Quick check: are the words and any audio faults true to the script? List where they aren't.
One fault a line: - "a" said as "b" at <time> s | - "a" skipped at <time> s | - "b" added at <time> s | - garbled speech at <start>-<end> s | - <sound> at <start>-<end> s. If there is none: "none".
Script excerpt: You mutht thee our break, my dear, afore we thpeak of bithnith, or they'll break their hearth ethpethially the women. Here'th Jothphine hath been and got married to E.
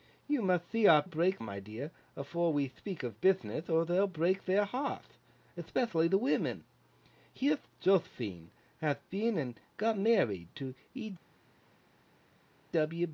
none